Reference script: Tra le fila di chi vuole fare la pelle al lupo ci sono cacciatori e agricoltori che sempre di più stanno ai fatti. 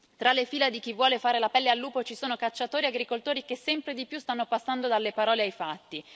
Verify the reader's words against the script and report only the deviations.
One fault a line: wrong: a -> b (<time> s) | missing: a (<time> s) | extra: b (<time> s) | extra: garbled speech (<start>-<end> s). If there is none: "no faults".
extra: passando dalle parole (4.5 s)